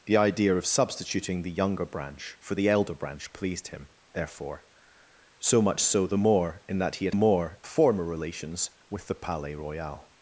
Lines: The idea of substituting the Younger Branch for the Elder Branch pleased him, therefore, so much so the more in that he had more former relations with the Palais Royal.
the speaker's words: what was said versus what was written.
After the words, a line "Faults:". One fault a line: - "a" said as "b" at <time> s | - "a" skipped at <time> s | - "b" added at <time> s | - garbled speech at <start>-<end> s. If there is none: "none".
The idea of substituting the Younger Branch for the Elder Branch pleased him, therefore, so much so the more in that he had more former relations with the Palais Royal.
Faults:
none